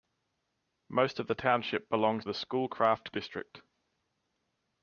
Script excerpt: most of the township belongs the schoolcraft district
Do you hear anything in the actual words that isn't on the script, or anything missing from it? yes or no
no